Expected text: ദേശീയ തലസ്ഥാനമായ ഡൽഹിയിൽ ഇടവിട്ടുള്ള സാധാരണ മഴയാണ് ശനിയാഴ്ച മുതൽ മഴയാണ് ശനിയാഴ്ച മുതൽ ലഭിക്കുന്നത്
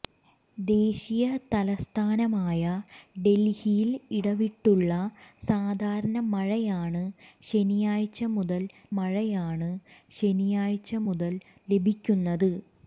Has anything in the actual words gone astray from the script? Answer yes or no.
no